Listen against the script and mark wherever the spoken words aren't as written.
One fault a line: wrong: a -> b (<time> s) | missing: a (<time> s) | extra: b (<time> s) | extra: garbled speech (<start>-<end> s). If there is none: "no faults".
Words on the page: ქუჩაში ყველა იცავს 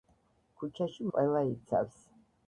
no faults